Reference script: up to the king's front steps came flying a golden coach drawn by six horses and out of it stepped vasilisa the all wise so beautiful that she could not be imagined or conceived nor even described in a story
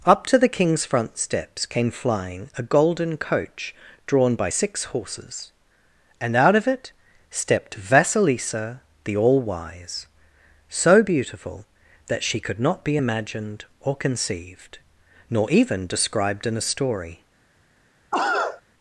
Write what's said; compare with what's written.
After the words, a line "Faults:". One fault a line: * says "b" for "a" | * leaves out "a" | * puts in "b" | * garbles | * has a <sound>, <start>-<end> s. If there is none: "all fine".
up to the king's front steps came flying a golden coach drawn by six horses and out of it stepped vasilisa the all wise so beautiful that she could not be imagined or conceived nor even described in a story
Faults:
* has a cough, 18.1-18.6 s